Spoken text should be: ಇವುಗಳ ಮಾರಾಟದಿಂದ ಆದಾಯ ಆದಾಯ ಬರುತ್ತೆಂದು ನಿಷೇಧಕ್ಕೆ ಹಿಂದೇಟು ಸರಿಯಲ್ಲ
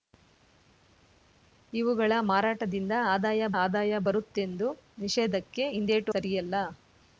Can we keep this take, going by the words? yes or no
yes